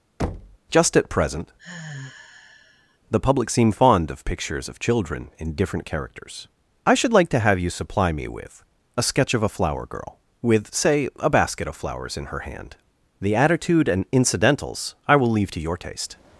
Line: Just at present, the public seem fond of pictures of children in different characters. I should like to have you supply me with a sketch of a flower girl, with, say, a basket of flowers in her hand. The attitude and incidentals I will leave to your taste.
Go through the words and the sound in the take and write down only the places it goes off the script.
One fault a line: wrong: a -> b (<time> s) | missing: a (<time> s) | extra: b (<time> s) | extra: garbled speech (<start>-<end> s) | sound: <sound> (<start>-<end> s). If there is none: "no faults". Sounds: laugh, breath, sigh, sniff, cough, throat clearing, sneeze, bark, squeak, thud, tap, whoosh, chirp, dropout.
sound: thud (0.2-0.6 s)
sound: sigh (1.6-3.0 s)